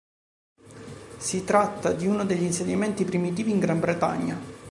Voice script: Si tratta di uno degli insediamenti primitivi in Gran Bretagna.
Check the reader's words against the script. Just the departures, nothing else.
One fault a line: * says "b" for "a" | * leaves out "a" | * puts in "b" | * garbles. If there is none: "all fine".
all fine